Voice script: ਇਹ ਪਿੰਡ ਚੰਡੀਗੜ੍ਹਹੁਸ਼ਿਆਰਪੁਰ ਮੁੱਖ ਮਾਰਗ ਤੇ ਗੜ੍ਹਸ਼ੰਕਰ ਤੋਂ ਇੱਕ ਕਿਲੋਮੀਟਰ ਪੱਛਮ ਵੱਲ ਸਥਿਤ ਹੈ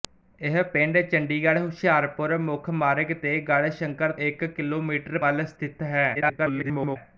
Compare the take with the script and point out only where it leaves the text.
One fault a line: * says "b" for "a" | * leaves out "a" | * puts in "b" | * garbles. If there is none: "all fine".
* leaves out "ਤੋਂ"
* leaves out "ਪੱਛਮ"
* garbles